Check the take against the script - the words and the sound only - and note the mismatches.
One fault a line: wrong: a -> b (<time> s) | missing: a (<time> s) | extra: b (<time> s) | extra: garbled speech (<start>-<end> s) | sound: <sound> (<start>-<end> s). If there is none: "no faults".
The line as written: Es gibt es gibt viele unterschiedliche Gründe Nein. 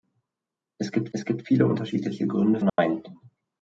sound: dropout (2.7-2.8 s)